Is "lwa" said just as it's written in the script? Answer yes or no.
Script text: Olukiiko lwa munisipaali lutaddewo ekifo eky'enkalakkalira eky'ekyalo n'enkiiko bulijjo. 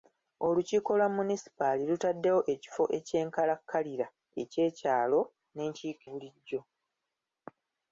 yes